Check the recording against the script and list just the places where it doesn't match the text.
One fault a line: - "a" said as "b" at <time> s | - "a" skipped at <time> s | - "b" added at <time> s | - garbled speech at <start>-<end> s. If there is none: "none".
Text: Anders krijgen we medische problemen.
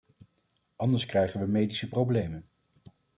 none